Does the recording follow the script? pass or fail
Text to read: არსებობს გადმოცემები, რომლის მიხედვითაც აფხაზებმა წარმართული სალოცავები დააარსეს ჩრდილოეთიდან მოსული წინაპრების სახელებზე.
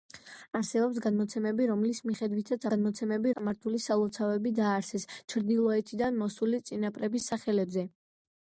fail